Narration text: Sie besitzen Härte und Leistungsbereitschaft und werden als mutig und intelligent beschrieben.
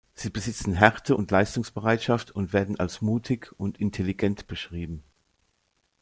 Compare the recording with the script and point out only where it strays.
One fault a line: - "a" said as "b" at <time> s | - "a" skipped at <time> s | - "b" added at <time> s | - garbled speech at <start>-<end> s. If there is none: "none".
none